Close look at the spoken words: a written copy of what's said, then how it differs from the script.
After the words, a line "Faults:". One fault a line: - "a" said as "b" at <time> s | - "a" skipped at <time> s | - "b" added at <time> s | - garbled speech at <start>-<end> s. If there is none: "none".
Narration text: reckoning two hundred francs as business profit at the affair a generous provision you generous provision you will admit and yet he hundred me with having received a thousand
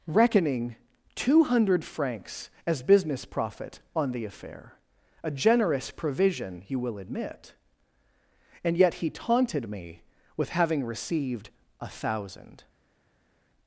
reckoning two hundred francs as business profit on the affair a generous provision you will admit and yet he taunted me with having received a thousand
Faults:
- "at" said as "on" at 4.0 s
- "generous provision you" skipped at 6.8 s
- "hundred" said as "taunted" at 9.1 s